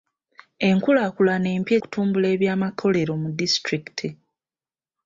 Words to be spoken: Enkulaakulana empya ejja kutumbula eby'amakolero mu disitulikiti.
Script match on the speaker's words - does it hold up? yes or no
no